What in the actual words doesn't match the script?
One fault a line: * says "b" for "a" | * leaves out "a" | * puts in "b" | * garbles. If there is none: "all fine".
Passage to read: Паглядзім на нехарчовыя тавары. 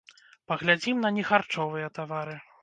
all fine